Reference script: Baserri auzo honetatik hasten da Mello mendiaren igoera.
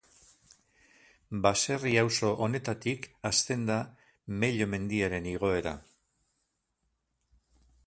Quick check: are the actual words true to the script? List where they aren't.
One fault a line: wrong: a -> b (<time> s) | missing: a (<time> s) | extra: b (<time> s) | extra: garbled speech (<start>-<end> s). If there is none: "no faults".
no faults